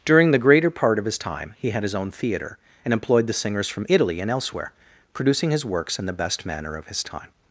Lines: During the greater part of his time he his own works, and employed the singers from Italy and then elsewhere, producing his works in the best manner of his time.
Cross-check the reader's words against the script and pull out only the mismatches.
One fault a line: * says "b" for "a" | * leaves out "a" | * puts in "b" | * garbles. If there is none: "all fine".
* puts in "had"
* says "theater" for "works"
* leaves out "then"